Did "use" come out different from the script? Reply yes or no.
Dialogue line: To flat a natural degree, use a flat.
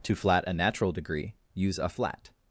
no